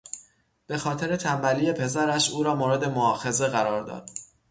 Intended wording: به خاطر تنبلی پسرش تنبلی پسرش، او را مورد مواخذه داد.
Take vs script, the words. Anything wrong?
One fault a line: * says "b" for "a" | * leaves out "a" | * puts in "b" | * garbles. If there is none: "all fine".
* leaves out "تنبلی پسرش"
* puts in "قرار"